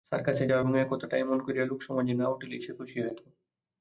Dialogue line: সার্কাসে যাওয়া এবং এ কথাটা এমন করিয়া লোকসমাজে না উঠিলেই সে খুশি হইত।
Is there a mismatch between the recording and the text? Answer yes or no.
no